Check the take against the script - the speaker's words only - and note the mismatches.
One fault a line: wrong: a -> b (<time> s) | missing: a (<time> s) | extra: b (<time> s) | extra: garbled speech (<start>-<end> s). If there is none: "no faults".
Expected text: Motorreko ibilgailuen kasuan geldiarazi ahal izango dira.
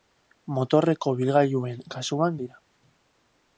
missing: geldiarazi ahal izango (2.4 s)